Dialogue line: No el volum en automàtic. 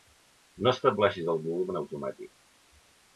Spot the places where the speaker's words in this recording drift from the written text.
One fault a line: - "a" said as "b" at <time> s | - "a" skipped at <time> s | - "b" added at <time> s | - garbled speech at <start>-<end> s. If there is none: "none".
- "estableixis" added at 0.8 s